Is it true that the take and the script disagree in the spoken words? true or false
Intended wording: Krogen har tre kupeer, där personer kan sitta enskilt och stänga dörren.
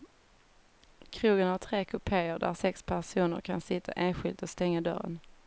true